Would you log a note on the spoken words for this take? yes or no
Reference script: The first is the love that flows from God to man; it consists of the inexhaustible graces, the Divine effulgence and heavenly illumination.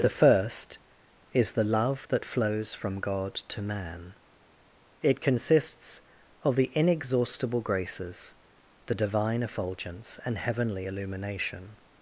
no